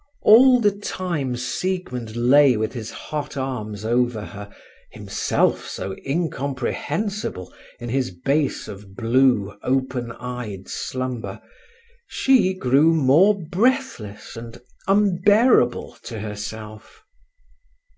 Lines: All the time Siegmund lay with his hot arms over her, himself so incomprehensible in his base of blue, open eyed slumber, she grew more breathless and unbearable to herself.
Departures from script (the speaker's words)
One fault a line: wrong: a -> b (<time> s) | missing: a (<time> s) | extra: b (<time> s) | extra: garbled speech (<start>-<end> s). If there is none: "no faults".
no faults